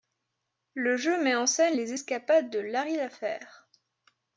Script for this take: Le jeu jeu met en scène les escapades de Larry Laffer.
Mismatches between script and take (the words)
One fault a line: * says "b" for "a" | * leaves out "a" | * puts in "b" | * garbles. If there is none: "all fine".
* leaves out "jeu"